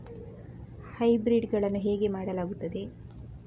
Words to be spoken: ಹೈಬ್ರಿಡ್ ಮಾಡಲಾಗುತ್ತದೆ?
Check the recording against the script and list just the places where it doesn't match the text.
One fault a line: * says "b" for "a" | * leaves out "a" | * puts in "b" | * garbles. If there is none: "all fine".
* puts in "ಗಳನ್ನು ಹೇಗೆ"